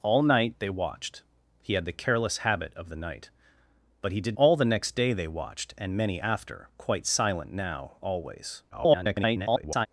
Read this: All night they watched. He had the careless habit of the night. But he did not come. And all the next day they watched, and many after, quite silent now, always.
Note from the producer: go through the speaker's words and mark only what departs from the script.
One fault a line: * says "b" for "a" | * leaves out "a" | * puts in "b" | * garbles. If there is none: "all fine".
* leaves out "not come And"
* garbles